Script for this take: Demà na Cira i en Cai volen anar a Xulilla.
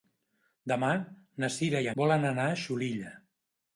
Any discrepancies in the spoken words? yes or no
yes